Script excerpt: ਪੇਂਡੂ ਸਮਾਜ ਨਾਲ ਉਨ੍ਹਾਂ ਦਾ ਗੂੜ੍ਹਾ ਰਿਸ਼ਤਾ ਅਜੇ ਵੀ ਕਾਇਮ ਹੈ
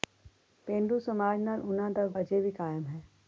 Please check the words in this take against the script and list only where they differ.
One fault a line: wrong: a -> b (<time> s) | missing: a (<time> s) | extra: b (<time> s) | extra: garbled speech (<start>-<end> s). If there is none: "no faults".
missing: ਗੂੜ੍ਹਾ ਰਿਸ਼ਤਾ (2.1 s)